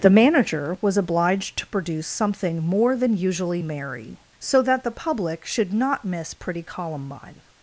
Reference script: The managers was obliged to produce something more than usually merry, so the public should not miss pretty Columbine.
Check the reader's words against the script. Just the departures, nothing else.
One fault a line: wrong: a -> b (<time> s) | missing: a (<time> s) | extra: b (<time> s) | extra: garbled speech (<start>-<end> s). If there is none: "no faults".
wrong: managers -> manager (0.1 s)
extra: that (4.6 s)